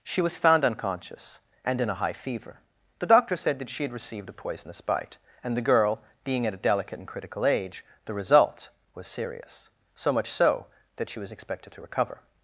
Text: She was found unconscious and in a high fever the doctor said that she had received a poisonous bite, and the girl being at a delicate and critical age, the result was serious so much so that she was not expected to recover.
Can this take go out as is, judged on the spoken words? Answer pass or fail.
fail